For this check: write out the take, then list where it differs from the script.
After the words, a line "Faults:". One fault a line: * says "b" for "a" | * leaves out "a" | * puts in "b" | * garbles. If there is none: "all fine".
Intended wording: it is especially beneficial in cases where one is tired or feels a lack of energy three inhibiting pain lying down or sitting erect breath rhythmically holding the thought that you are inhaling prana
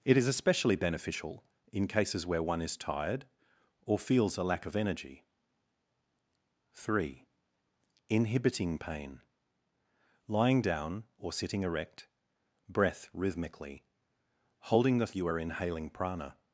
it is especially beneficial in cases where one is tired or feels a lack of energy three inhibiting pain lying down or sitting erect breath rhythmically holding the you are inhaling prana
Faults:
* leaves out "thought that"